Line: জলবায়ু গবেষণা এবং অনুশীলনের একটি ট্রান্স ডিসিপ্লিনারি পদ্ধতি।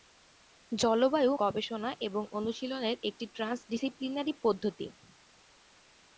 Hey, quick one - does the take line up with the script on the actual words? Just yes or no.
yes